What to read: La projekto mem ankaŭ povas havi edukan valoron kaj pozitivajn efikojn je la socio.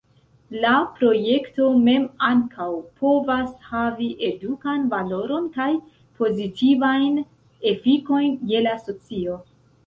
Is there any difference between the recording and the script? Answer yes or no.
no